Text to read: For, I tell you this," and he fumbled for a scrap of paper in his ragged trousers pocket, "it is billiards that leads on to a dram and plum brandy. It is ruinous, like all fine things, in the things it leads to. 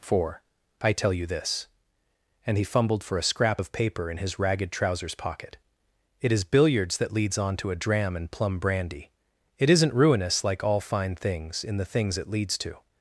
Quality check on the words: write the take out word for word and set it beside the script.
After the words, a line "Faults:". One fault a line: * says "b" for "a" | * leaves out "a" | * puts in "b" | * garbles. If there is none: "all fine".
For, I tell you this," and he fumbled for a scrap of paper in his ragged trousers pocket, "it is billiards that leads on to a dram and plum brandy. It isn't ruinous, like all fine things, in the things it leads to.
Faults:
* says "isn't" for "is"